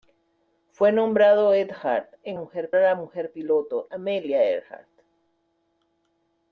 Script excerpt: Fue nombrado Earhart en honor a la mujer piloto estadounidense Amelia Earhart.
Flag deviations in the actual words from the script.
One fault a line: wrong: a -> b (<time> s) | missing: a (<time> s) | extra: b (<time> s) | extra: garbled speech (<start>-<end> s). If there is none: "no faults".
wrong: honor -> mujer (2.3 s)
missing: estadounidense (3.9 s)